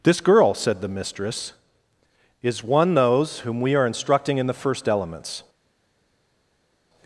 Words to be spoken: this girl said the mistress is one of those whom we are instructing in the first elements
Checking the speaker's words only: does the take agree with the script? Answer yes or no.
no